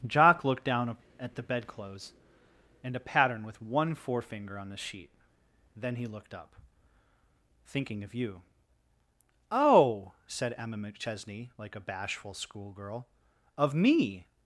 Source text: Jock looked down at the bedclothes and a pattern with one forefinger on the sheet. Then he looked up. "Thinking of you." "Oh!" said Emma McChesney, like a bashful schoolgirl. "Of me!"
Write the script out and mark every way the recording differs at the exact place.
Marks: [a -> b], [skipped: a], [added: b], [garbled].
Jock looked down at the bedclothes and a pattern with one forefinger on the sheet. Then he looked up. "Thinking of you." "Oh!" said Emma McChesney, like a bashful schoolgirl. "Of me!"